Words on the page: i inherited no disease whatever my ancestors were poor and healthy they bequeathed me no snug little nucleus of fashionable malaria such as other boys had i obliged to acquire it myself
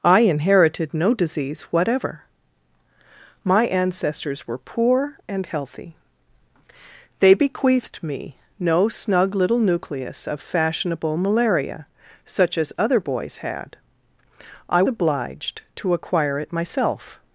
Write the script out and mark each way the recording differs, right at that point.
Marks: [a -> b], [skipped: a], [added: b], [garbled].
i inherited no disease whatever my ancestors were poor and healthy they bequeathed me no snug little nucleus of fashionable malaria such as other boys had i obliged to acquire it myself